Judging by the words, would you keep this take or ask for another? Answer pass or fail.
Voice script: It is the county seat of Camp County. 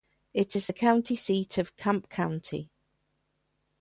pass